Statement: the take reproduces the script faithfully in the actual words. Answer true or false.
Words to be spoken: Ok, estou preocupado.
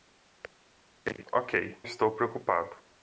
true